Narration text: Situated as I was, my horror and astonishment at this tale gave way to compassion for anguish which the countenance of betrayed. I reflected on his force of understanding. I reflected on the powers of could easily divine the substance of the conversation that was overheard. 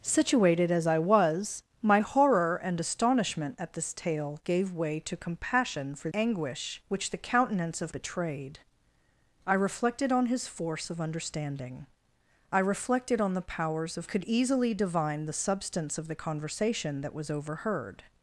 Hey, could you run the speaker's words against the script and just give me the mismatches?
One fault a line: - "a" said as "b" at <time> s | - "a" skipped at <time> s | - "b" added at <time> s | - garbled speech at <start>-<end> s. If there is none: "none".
none